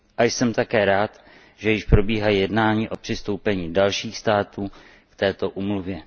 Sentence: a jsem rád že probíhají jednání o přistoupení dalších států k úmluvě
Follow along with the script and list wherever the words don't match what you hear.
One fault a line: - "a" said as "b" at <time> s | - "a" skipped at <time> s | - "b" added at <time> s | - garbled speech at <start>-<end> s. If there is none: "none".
- "také" added at 0.5 s
- "již" added at 1.7 s
- "této" added at 5.2 s